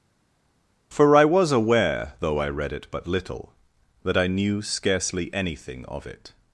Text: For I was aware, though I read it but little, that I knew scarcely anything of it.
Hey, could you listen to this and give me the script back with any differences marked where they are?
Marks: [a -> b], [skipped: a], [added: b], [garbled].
For I was aware, though I read it but little, that I knew scarcely anything of it.